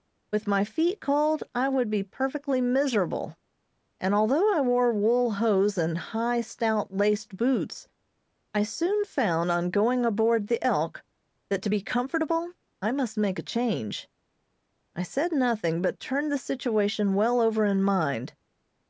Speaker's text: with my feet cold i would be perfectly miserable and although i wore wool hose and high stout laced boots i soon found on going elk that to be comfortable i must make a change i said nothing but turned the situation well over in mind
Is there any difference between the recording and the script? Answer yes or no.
yes